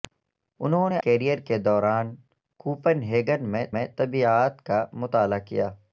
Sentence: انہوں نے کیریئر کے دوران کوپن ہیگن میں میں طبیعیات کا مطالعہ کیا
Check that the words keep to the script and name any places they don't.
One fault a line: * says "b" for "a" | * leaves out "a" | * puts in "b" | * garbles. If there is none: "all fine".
all fine